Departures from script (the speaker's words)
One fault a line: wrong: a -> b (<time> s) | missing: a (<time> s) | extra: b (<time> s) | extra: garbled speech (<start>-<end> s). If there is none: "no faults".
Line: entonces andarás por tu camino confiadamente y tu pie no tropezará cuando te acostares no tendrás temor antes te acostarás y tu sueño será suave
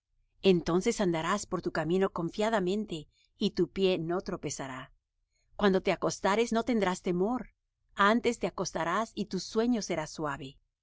no faults